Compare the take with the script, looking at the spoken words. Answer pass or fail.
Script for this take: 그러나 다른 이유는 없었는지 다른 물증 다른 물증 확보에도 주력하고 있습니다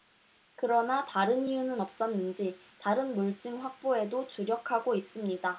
fail